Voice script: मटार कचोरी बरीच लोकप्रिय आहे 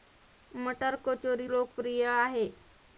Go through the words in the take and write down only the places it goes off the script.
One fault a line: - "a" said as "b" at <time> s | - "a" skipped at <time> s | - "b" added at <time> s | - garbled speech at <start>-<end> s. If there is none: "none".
- "बरीच" skipped at 1.5 s